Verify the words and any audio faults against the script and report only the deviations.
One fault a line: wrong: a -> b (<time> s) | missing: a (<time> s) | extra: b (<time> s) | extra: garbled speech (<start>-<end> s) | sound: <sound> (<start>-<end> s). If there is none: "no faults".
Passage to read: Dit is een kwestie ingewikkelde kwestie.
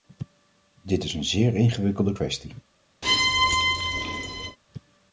wrong: kwestie -> zeer (1.2 s)
sound: squeak (3.0-4.6 s)